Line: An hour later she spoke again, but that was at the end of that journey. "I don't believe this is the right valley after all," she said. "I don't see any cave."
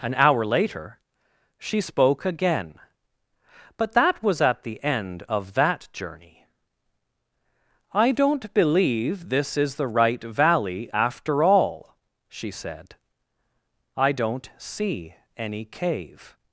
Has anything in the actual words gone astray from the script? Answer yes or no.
no